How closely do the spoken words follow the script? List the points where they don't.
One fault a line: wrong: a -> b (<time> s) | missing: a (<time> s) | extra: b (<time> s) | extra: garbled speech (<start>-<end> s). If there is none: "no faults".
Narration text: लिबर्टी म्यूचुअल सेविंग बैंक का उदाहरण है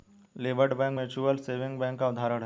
extra: बैंक (0.8 s)